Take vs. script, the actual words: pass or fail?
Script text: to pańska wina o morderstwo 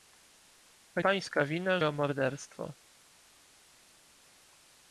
pass